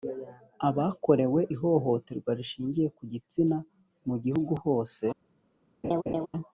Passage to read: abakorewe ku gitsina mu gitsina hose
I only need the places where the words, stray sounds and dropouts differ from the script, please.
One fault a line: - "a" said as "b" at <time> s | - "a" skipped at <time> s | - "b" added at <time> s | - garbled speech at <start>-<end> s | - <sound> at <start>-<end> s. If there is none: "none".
- "ihohoterwa rishingiye" added at 1.5 s
- "gitsina" said as "gihugu" at 4.2 s
- laugh at 5.8-6.3 s